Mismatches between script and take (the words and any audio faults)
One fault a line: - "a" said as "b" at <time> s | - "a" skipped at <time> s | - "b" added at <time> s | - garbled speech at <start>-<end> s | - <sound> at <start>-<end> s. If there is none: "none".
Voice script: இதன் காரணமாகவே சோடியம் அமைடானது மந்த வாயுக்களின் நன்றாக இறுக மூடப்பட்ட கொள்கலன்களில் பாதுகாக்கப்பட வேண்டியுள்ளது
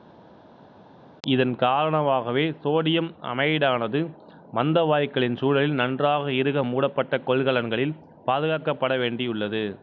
- "சூழலில்" added at 5.4 s